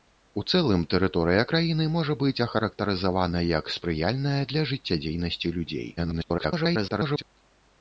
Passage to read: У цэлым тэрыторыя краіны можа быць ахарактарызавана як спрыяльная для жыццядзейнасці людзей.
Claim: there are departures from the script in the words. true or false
true